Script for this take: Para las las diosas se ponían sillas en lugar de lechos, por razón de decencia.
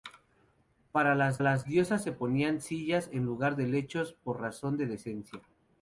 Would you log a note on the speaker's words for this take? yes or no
no